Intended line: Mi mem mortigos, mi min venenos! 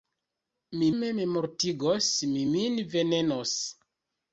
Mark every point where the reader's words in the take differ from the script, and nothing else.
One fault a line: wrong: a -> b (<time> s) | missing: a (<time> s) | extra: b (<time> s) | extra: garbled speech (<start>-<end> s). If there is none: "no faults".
no faults